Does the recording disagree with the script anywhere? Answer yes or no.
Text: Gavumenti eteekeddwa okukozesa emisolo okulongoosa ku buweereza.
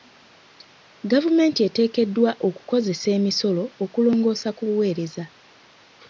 no